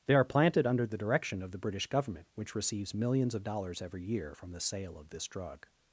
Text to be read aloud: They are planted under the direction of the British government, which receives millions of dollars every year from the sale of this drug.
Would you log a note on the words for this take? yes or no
no